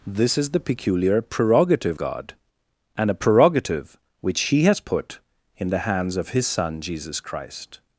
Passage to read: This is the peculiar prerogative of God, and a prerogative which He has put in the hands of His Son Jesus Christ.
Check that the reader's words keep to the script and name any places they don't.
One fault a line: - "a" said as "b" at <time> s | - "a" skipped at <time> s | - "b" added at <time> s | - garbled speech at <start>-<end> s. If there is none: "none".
- "of" skipped at 2.0 s